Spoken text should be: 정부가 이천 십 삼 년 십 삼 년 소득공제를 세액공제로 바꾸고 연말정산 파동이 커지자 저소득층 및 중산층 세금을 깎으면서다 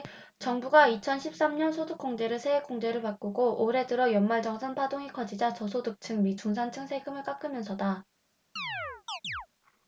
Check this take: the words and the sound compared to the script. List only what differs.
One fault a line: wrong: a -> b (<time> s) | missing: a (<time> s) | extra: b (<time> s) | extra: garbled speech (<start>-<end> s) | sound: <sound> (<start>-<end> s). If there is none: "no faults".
missing: 십 삼 년 (1.7 s)
extra: 올해 들어 (3.6 s)
sound: chirp (8.6-9.5 s)